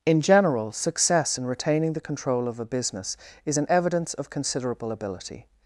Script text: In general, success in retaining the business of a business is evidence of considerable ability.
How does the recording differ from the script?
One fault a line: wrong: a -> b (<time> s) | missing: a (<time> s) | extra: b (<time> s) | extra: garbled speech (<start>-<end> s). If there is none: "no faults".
wrong: business -> control (2.0 s)
extra: an (3.6 s)